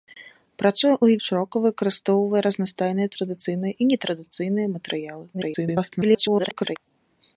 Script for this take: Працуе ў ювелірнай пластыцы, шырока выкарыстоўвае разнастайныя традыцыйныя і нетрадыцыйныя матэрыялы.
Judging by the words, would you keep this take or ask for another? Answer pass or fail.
fail